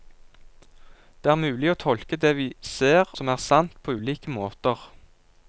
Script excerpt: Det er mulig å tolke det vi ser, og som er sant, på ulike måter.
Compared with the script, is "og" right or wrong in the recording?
wrong